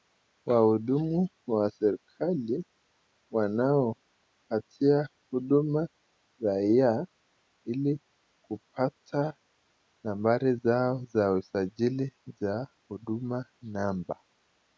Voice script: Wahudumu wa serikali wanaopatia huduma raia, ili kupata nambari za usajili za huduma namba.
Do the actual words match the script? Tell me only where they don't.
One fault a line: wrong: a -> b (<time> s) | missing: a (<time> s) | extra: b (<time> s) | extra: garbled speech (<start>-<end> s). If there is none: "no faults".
extra: zao (10.6 s)